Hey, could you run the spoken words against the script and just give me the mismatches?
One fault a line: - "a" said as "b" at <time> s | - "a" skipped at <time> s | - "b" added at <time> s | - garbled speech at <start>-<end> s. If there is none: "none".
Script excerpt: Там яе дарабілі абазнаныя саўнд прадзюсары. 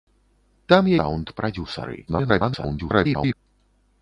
- "яе дарабілі абазнаныя" skipped at 0.9 s
- garbled speech at 2.1-3.3 s